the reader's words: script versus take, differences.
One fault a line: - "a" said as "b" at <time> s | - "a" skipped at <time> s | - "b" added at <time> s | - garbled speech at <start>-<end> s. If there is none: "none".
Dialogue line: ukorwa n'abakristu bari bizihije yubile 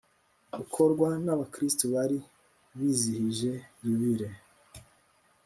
none